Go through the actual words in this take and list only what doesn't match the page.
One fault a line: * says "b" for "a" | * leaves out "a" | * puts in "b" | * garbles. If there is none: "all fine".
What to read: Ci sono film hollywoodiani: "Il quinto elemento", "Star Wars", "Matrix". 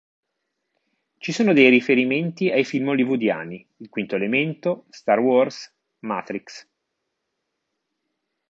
* puts in "dei riferimenti ai"